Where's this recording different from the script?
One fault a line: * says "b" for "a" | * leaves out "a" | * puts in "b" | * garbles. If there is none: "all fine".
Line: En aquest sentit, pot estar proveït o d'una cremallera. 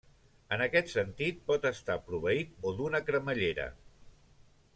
all fine